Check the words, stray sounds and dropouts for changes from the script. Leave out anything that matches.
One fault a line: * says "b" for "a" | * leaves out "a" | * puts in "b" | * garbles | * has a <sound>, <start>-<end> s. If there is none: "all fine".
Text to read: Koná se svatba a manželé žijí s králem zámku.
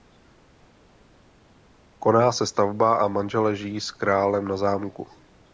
* puts in "na"